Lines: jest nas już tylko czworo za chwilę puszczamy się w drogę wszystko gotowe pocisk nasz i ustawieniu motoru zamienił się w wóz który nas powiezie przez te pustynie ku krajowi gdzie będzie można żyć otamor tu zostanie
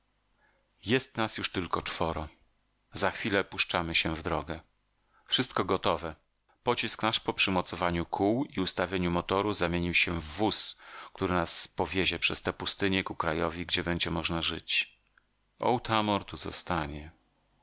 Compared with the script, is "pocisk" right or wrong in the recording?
right